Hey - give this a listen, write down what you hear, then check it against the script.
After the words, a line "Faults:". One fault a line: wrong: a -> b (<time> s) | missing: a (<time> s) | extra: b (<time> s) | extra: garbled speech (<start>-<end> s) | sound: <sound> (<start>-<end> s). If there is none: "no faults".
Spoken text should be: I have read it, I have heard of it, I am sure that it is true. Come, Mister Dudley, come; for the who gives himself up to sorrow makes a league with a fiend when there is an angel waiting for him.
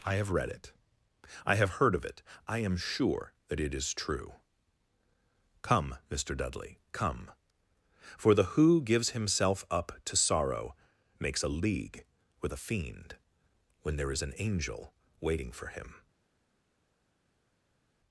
I have read it, I have heard of it, I am sure that it is true. Come, Mister Dudley, come; for the who gives himself up to sorrow makes a league with a fiend when there is an angel waiting for him.
Faults:
no faults